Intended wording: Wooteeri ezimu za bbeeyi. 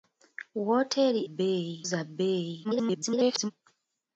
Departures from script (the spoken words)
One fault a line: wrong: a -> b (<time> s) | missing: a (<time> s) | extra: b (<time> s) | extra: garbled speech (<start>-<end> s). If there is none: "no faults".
wrong: ezimu -> bbeeyi (1.3 s)
extra: garbled speech (2.6-3.5 s)